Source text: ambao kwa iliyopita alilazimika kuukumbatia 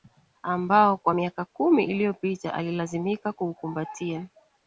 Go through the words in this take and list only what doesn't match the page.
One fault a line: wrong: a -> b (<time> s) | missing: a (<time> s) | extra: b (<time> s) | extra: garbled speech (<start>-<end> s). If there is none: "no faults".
extra: miaka kumi (1.1 s)